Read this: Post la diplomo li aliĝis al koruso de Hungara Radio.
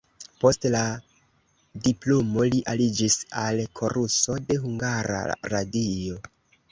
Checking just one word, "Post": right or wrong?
right